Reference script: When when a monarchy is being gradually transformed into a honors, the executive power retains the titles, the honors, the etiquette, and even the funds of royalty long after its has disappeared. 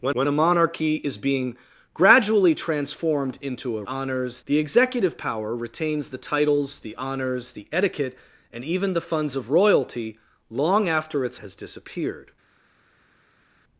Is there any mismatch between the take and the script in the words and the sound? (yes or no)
no